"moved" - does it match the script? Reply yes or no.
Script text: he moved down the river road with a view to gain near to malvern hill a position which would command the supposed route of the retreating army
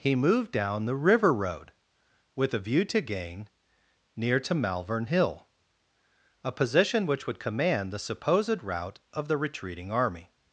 yes